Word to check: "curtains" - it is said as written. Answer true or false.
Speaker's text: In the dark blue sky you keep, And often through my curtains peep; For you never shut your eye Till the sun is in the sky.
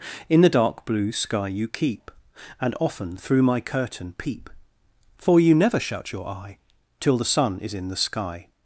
false